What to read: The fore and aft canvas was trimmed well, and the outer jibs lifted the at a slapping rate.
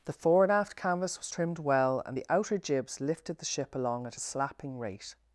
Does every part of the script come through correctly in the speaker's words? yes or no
no